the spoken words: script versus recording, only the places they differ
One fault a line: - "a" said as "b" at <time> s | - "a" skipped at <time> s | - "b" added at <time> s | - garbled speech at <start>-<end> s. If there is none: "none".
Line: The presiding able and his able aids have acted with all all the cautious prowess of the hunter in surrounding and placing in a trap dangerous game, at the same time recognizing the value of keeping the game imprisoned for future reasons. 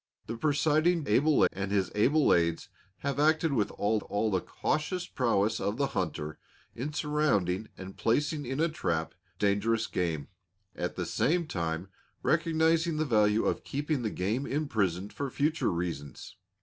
none